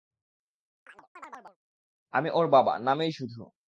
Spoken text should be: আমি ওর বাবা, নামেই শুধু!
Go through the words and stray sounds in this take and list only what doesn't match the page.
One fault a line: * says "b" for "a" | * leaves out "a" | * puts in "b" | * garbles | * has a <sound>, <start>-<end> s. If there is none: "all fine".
* has a chirp, 0.9-1.6 s